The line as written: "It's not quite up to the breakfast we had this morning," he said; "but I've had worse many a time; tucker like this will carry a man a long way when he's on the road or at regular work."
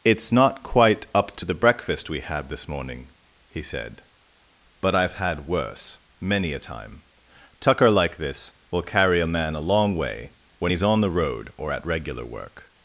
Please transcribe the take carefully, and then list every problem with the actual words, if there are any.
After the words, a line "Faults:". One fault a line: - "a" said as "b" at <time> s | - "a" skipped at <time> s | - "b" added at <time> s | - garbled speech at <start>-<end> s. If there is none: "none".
"It's not quite up to the breakfast we had this morning," he said; "but I've had worse many a time; tucker like this will carry a man a long way when he's on the road or at regular work."
Faults:
none